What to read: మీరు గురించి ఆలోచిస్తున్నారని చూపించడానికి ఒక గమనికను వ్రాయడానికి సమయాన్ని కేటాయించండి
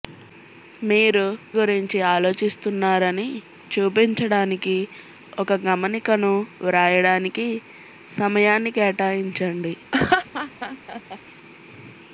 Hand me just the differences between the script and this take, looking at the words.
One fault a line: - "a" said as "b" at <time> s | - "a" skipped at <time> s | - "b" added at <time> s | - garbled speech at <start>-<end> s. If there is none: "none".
none